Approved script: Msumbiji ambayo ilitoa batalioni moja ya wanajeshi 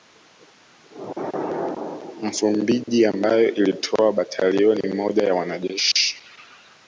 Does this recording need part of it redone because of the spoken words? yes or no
no